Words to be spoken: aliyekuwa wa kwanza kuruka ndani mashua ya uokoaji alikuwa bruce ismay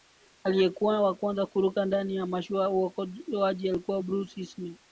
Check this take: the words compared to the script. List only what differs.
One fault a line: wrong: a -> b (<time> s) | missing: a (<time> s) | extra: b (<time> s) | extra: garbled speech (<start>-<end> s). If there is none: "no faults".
extra: ya (2.1 s)